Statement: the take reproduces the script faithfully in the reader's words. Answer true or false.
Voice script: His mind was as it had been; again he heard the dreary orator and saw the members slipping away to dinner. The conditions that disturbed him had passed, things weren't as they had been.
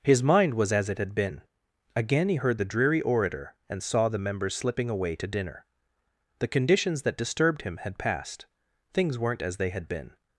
true